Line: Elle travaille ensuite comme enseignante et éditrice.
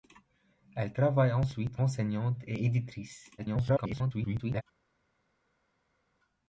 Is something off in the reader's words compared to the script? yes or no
yes